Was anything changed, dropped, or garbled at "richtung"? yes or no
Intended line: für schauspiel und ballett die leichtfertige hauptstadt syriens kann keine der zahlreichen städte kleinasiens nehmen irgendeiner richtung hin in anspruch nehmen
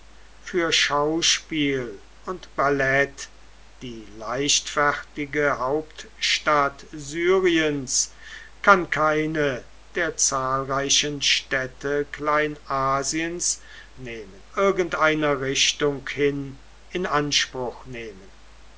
no